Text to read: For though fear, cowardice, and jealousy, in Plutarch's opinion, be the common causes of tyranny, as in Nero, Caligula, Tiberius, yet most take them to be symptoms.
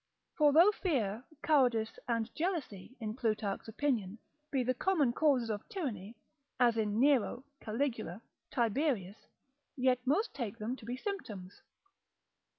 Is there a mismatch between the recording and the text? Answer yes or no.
no